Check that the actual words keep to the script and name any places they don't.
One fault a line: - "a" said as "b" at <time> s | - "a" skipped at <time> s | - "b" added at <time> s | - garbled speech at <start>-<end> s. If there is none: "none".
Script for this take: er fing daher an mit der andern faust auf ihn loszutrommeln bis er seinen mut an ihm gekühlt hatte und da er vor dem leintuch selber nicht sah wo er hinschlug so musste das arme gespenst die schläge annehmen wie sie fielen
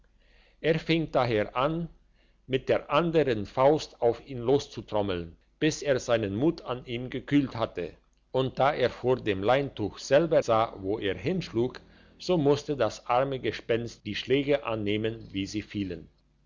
- "nicht" skipped at 10.4 s